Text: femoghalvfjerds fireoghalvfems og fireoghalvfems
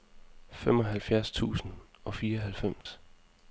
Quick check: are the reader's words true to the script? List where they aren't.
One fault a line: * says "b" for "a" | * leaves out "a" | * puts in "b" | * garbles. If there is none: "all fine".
* says "tusind" for "fireoghalvfems"